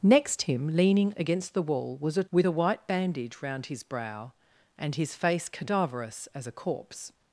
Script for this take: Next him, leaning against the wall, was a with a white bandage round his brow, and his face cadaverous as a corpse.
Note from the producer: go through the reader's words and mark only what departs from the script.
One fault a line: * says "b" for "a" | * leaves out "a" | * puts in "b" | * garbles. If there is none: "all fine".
all fine